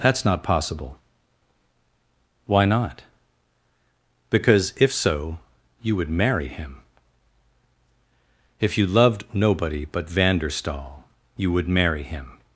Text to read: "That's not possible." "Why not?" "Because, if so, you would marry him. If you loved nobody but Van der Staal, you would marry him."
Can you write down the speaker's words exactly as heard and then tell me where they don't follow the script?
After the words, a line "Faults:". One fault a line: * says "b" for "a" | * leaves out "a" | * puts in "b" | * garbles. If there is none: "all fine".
"That's not possible." "Why not?" "Because, if so, you would marry him. If you loved nobody but Van der Staal, you would marry him."
Faults:
all fine